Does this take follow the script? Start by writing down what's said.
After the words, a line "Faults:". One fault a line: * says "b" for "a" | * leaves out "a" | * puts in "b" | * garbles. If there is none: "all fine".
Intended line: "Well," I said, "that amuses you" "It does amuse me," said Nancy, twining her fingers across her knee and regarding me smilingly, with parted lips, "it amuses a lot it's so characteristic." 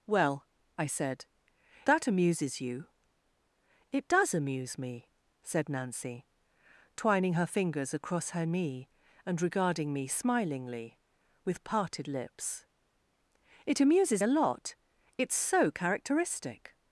"Well," I said, "that amuses you" "It does amuse me," said Nancy, twining her fingers across her knee and regarding me smilingly, with parted lips, "it amuses a lot it's so characteristic."
Faults:
all fine